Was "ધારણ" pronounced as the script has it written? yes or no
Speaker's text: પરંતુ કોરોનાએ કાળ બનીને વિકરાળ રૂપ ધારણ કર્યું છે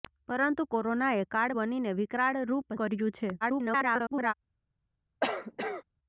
no